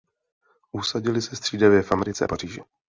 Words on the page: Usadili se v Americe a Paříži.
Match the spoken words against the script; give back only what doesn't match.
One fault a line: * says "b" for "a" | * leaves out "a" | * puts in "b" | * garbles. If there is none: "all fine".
* puts in "střídavě"